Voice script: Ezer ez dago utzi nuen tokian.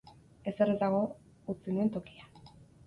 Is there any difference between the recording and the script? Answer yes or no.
no